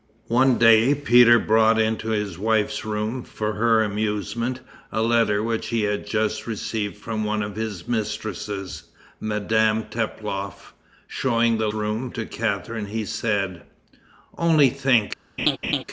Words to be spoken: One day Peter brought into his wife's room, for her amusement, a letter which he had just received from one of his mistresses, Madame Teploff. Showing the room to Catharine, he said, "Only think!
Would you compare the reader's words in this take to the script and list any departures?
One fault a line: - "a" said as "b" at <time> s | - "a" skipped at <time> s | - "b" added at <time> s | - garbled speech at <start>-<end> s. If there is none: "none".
none